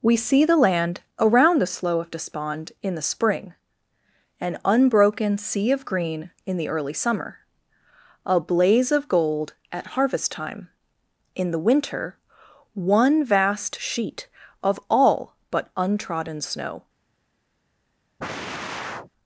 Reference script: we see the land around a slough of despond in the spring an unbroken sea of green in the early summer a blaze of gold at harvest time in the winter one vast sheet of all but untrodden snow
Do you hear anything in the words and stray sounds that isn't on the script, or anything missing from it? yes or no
yes